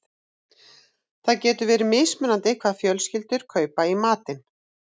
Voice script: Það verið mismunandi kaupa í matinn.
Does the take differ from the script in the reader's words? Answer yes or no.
yes